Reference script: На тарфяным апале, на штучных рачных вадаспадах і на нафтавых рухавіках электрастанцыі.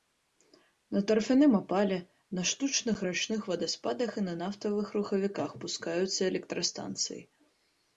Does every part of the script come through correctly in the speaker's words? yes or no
no